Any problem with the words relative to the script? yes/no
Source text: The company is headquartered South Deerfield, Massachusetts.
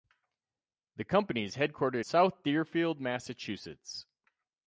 no